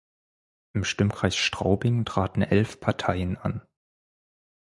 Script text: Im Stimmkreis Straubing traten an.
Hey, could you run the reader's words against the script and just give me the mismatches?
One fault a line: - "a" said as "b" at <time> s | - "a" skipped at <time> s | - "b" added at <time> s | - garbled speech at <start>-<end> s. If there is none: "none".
- "elf Parteien" added at 2.4 s